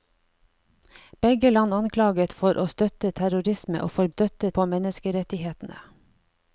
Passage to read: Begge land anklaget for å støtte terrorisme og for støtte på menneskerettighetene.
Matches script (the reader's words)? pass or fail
pass